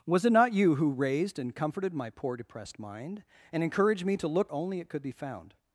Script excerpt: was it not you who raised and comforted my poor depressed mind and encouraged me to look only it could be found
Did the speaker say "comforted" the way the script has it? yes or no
yes